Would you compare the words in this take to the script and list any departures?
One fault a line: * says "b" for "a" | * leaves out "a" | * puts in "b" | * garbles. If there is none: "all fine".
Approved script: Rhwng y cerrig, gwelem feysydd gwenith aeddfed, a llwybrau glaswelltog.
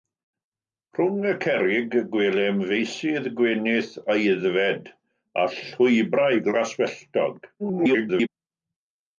* garbles